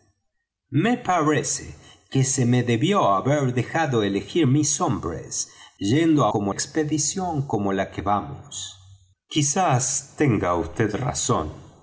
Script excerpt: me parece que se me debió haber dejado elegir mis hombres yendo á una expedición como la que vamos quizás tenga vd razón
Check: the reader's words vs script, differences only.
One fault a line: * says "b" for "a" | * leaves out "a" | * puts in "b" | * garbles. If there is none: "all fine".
* says "como" for "una"